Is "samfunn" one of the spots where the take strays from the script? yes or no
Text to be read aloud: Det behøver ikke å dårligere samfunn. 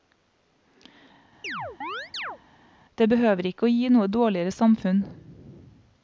no